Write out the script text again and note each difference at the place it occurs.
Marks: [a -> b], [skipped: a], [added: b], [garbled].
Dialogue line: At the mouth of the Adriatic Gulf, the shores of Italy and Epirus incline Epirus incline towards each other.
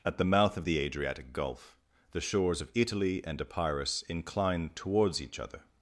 At the mouth of the Adriatic Gulf, the shores of Italy and Epirus incline [skipped: Epirus incline] towards each other.